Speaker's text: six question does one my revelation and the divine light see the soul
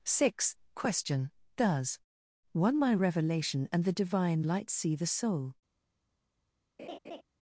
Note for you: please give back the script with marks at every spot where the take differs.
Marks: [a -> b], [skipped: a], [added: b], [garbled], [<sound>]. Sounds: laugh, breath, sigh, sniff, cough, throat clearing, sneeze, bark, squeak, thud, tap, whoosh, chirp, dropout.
six question does one my revelation and the divine light see the soul [laugh]